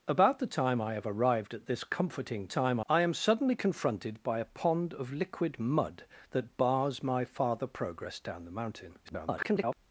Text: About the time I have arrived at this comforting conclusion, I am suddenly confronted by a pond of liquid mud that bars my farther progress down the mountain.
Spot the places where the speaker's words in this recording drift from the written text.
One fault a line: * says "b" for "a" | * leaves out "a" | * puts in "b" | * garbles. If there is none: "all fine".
* says "time" for "conclusion"
* garbles